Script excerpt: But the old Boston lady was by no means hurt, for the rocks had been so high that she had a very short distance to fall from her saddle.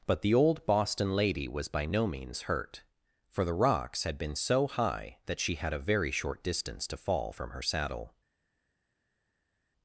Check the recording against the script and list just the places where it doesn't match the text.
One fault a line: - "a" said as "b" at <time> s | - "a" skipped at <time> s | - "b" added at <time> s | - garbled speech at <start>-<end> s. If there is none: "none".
none